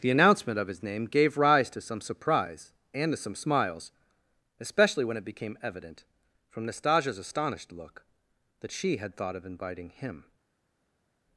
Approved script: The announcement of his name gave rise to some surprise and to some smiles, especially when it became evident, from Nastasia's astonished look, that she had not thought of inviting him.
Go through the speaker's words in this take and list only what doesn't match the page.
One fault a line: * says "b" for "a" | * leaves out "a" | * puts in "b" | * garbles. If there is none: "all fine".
* leaves out "not"